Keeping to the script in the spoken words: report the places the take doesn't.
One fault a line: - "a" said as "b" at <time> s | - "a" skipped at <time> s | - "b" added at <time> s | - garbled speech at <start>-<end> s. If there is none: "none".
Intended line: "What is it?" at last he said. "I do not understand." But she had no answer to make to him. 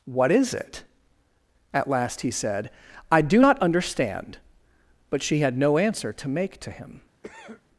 none